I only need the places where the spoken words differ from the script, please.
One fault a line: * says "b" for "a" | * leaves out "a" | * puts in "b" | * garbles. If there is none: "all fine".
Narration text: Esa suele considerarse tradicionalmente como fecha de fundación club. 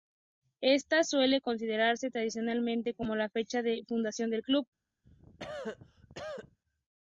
* says "Esta" for "Esa"
* puts in "la"
* puts in "del"